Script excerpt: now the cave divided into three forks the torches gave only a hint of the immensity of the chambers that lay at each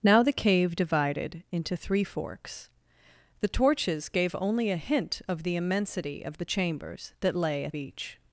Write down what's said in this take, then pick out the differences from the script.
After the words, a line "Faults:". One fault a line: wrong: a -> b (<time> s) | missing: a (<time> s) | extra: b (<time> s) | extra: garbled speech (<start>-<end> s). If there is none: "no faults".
now the cave divided into three forks the torches gave only a hint of the immensity of the chambers that lay at each
Faults:
no faults